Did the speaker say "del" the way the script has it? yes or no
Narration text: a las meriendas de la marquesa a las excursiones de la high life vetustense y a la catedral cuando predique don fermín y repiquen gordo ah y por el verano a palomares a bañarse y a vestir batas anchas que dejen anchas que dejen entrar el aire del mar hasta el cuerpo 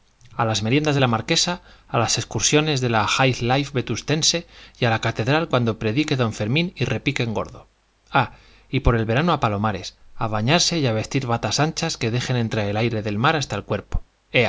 yes